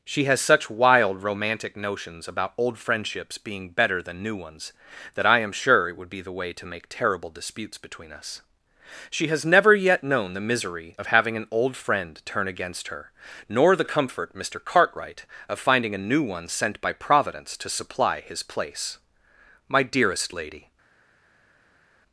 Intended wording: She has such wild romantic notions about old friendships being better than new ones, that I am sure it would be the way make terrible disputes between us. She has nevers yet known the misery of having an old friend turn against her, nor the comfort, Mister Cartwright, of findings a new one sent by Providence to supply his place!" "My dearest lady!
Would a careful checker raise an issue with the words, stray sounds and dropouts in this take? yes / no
yes